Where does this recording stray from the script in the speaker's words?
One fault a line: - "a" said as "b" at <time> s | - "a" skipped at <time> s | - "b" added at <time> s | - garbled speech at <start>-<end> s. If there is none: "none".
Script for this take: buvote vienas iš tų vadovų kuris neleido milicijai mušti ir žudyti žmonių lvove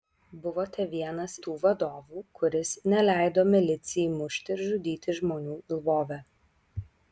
- "iš" skipped at 1.3 s